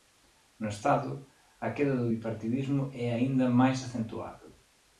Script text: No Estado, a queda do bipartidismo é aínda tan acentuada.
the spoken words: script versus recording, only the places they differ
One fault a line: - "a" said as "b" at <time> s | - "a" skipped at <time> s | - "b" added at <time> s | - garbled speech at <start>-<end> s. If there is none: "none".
- "tan" said as "máis" at 3.6 s